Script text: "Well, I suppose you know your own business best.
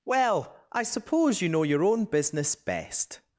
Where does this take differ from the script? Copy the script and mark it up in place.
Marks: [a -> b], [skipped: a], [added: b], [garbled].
"Well, I suppose you know your own business best.